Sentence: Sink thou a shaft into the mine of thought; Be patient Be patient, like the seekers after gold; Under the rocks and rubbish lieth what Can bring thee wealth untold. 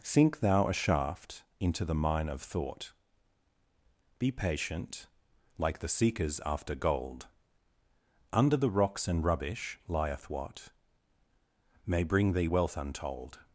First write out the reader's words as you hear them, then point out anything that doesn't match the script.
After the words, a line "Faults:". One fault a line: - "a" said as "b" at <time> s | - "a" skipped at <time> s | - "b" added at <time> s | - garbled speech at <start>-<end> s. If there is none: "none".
Sink thou a shaft into the mine of thought; Be patient, like the seekers after gold; Under the rocks and rubbish lieth what May bring thee wealth untold.
Faults:
- "Be patient" skipped at 5.0 s
- "Can" said as "May" at 11.8 s